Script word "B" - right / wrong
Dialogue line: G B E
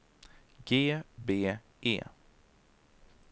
right